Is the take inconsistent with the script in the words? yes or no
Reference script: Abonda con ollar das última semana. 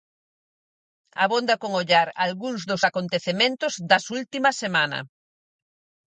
yes